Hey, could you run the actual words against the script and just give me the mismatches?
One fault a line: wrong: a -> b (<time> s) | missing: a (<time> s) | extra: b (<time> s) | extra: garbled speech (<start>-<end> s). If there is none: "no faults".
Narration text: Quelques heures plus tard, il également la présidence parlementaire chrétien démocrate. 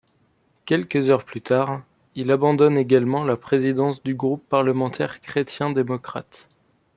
extra: abandonne (2.3 s)
extra: du groupe (4.0 s)